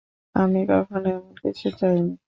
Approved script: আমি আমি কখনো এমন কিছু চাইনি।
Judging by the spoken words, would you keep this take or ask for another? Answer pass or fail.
fail